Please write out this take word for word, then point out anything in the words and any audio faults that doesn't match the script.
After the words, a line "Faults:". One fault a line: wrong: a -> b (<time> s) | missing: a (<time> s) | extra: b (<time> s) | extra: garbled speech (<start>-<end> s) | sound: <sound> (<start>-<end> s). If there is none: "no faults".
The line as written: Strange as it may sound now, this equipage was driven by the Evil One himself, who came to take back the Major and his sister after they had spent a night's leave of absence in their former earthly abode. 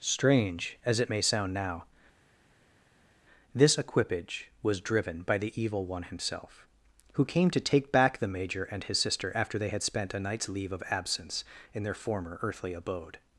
Strange as it may sound now, this equipage was driven by the Evil One himself, who came to take back the Major and his sister after they had spent a night's leave of absence in their former earthly abode.
Faults:
no faults